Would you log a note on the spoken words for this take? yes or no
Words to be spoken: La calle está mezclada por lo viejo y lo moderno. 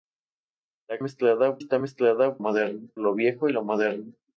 yes